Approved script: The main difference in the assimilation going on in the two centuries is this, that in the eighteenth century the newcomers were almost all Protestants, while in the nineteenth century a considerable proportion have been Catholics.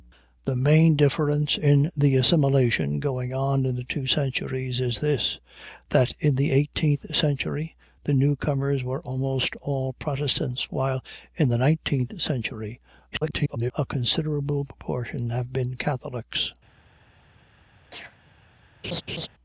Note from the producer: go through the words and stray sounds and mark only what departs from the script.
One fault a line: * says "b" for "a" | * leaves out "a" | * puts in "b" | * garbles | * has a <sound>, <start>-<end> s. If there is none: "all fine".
* garbles
* has a sneeze, 17.9-18.2 s
* has a laugh, 18.8-19.3 s